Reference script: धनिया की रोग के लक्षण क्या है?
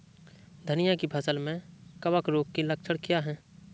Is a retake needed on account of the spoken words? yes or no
yes